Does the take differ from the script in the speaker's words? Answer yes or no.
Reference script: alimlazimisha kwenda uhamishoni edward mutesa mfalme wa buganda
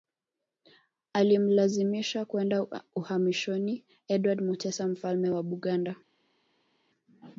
no